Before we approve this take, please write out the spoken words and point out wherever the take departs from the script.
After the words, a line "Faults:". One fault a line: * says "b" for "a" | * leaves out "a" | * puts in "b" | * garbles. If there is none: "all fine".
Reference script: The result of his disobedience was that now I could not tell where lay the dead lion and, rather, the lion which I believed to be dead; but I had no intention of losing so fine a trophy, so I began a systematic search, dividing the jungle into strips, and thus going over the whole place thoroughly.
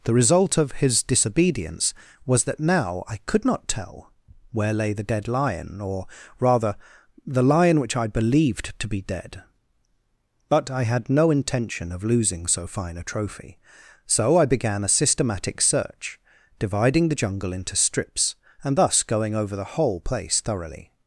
The result of his disobedience was that now I could not tell where lay the dead lion or, rather, the lion which I believed to be dead; but I had no intention of losing so fine a trophy, so I began a systematic search, dividing the jungle into strips, and thus going over the whole place thoroughly.
Faults:
* says "or" for "and"